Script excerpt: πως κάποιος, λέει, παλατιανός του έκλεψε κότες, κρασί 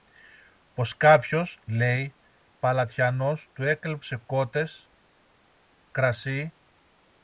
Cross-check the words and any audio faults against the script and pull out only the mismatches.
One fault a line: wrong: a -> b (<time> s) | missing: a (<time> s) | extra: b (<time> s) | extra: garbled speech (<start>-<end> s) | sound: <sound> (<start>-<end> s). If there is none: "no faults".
no faults